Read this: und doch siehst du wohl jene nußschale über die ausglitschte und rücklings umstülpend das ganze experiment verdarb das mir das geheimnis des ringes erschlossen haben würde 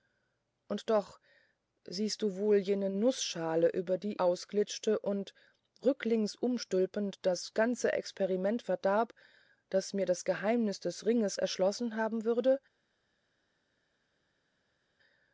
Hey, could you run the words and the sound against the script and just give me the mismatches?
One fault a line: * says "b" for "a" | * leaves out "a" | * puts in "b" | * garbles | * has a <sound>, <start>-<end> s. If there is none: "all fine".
all fine